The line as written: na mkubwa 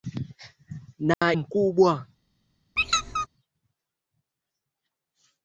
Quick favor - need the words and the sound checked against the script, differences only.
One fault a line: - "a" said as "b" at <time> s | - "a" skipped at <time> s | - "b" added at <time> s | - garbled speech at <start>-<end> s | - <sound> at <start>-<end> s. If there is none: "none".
- dropout at 1.1-1.2 s
- squeak at 2.8-3.3 s